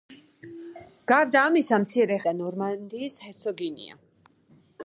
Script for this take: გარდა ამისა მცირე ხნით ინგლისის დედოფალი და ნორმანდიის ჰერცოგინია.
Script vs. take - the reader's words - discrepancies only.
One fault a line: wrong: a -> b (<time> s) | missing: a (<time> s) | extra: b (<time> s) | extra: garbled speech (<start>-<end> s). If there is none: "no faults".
missing: ხნით ინგლისის დედოფალი (2.2 s)